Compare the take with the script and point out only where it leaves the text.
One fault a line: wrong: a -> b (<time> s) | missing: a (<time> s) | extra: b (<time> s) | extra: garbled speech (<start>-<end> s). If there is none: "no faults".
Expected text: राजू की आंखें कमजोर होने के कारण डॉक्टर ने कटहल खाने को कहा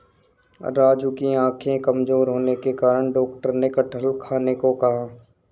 no faults